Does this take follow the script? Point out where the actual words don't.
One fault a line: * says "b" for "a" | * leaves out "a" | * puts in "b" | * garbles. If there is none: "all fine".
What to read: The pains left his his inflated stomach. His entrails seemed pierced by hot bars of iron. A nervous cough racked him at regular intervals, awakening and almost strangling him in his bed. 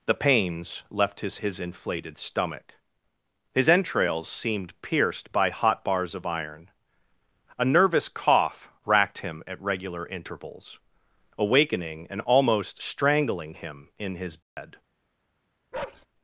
all fine